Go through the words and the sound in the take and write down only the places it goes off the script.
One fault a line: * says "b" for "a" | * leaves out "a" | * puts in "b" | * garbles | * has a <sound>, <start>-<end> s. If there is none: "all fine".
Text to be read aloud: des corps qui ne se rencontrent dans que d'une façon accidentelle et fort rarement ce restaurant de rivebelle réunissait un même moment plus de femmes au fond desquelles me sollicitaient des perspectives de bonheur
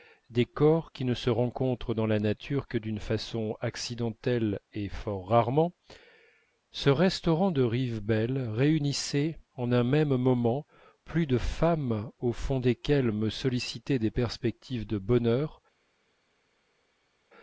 * puts in "la nature"
* puts in "en"